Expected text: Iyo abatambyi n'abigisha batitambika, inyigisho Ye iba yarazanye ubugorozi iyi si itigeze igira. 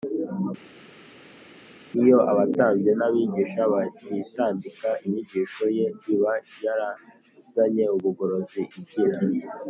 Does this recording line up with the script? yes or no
no